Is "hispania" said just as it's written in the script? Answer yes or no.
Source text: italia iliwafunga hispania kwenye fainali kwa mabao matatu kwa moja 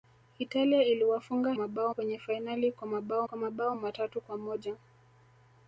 no